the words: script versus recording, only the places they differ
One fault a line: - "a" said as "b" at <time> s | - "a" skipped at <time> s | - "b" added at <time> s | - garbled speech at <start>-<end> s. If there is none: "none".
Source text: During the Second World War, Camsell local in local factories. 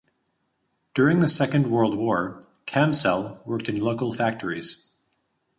- "local" said as "worked" at 3.5 s